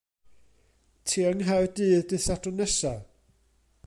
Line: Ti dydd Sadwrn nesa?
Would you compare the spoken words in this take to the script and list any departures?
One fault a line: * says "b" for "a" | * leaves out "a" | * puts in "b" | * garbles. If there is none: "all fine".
* puts in "yng Nghaerdydd"